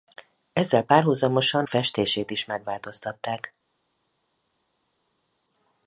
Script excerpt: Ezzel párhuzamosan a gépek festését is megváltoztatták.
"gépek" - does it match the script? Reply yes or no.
no